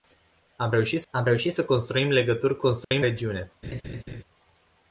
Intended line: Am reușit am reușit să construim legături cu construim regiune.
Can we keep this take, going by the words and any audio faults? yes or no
no